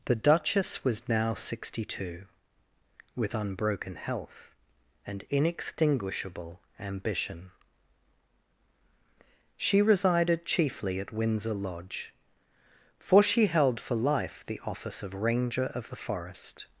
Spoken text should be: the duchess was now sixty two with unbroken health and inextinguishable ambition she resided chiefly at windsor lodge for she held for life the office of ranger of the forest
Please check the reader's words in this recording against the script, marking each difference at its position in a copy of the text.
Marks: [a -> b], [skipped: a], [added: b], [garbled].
the duchess was now sixty two with unbroken health and inextinguishable ambition she resided chiefly at windsor lodge for she held for life the office of ranger of the forest